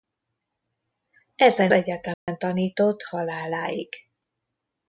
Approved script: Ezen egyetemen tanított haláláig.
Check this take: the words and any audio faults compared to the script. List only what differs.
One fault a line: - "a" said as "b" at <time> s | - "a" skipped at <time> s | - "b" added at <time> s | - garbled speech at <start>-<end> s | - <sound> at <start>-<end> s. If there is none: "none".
- dropout at 2.1-2.3 s